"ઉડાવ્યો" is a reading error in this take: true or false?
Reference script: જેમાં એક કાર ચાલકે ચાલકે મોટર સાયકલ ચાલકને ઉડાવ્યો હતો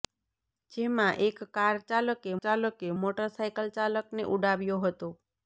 false